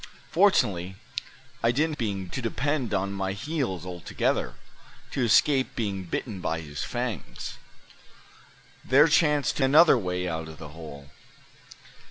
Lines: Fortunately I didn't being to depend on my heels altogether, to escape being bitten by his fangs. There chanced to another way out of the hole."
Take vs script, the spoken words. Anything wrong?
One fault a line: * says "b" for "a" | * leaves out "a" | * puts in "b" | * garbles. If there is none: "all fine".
all fine